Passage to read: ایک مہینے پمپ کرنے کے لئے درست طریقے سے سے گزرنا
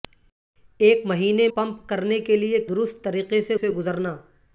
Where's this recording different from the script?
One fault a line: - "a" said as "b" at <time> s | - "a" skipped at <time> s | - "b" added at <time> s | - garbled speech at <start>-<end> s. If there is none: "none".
none